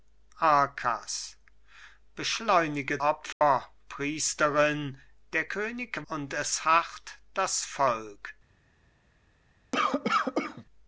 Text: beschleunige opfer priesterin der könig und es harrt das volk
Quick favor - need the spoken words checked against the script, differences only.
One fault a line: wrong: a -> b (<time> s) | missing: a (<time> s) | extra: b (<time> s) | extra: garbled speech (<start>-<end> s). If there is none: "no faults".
no faults